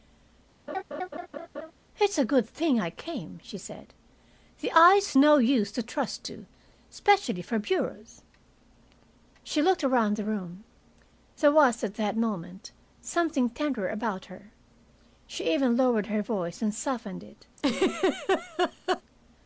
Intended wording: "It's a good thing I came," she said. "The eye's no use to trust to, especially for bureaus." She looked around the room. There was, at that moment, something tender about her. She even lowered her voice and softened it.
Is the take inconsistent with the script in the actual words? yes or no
no